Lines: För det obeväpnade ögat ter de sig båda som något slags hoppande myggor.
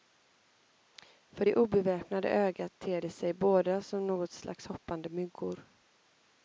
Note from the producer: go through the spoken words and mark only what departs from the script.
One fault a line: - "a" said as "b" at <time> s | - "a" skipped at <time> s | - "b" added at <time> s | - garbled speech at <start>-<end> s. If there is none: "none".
none